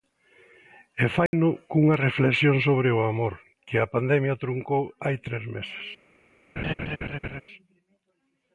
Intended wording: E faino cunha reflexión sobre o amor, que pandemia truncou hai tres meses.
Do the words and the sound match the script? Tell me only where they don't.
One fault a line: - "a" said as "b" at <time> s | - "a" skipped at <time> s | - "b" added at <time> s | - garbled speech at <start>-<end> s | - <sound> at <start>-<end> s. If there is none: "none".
- dropout at 1.3-1.3 s
- "a" added at 3.8 s
- laugh at 6.6-7.4 s